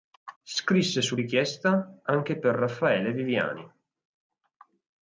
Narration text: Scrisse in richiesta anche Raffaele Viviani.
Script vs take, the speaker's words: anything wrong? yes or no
yes